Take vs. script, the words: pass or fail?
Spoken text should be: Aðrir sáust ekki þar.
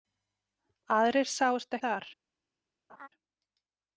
fail